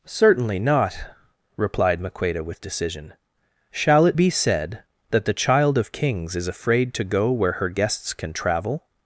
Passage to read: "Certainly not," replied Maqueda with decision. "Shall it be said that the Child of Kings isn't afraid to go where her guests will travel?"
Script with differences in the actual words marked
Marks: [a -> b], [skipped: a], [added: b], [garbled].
"Certainly not," replied Maqueda with decision. "Shall it be said that the Child of Kings [isn't -> is] afraid to go where her guests [will -> can] travel?"